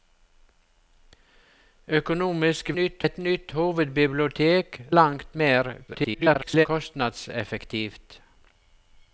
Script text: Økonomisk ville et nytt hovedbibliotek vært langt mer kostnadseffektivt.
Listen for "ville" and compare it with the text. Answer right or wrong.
wrong